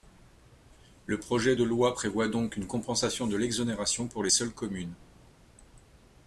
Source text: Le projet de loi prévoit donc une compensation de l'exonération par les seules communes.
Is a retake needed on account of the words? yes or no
yes